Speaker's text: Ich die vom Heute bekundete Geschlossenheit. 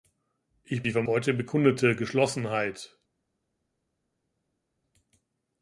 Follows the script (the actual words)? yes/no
yes